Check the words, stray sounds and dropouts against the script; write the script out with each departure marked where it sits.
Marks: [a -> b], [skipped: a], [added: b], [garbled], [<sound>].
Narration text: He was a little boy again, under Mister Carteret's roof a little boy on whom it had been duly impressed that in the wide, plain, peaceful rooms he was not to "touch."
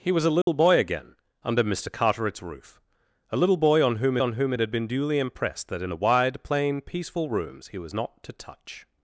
He was a little [dropout] boy again, under Mister Carteret's roof a little boy on whom [added: on whom] it had been duly impressed that in the wide, plain, peaceful rooms he was not to "touch."